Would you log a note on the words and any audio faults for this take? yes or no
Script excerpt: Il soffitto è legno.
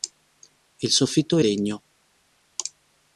no